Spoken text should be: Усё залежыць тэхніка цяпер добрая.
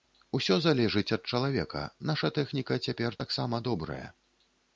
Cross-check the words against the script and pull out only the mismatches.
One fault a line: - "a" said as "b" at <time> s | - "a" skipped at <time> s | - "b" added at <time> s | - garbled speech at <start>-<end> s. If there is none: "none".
- "ад чалавека наша" added at 1.2 s
- "таксама" added at 3.2 s